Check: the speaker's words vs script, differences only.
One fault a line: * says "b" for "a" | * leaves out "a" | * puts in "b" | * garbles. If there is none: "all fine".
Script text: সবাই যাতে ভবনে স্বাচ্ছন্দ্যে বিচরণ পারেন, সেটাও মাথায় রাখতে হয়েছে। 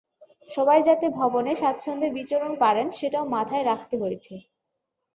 all fine